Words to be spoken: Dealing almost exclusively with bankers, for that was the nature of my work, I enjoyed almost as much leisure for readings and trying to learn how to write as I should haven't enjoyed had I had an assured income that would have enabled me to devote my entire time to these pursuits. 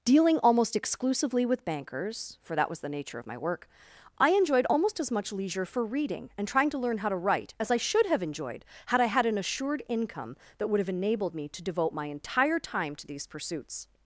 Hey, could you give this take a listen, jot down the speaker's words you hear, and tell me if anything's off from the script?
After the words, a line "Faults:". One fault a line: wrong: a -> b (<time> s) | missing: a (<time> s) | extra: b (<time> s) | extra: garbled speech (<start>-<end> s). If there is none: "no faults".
Dealing almost exclusively with bankers, for that was the nature of my work, I enjoyed almost as much leisure for reading and trying to learn how to write as I should have enjoyed had I had an assured income that would have enabled me to devote my entire time to these pursuits.
Faults:
wrong: readings -> reading (5.8 s)
wrong: haven't -> have (8.0 s)